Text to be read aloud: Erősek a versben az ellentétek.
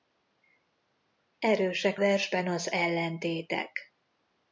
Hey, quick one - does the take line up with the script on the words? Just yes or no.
no